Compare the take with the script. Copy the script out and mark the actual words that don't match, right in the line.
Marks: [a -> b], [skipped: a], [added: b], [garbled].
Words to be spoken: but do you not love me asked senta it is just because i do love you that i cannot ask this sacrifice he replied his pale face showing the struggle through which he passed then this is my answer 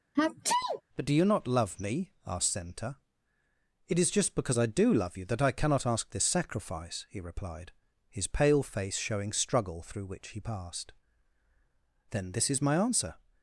but do you not love me asked senta it is just because i do love you that i cannot ask this sacrifice he replied his pale face showing [skipped: the] struggle through which he passed then this is my answer